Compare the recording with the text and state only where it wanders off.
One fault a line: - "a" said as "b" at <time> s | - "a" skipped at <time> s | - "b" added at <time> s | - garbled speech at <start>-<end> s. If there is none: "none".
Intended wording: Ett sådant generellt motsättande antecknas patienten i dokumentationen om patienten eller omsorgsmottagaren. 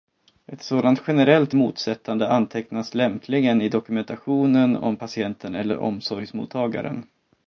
- "patienten" said as "lämpligen" at 2.9 s